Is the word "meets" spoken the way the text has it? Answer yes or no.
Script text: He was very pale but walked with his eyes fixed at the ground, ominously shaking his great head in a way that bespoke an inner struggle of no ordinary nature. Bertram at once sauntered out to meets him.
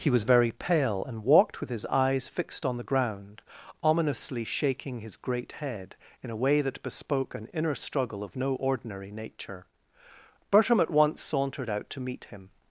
no